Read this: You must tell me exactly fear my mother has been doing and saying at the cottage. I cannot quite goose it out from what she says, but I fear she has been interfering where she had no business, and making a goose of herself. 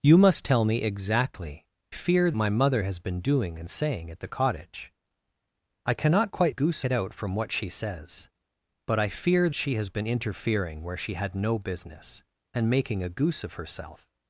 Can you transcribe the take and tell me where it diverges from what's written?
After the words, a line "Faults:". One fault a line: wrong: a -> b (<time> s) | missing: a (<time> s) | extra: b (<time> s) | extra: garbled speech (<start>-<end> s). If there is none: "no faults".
You must tell me exactly fear my mother has been doing and saying at the cottage. I cannot quite goose it out from what she says, but I fear she has been interfering where she had no business, and making a goose of herself.
Faults:
no faults